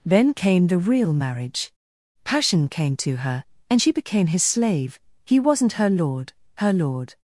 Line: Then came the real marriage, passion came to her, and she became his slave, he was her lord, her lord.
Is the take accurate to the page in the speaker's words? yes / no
no